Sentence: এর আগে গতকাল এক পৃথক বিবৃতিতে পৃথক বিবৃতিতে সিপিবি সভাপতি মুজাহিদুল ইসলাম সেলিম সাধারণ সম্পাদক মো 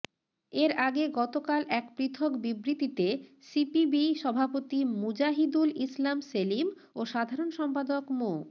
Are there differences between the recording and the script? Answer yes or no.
yes